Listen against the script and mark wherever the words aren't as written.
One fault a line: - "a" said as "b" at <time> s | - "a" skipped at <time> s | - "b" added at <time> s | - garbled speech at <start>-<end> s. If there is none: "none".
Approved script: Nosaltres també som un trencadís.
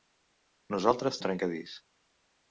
- "també som" skipped at 1.2 s